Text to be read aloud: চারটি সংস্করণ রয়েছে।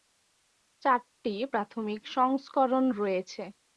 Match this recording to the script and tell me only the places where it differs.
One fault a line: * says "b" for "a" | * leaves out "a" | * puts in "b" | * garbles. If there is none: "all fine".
* puts in "প্রাথমিক"